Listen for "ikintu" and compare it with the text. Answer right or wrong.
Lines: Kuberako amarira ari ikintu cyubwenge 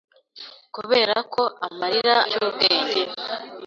wrong